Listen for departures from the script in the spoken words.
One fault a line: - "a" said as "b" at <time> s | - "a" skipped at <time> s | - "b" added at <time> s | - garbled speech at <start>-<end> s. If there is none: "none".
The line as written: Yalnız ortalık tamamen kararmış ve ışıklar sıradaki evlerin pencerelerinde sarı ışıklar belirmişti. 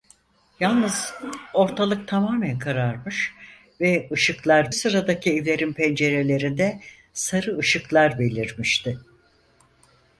none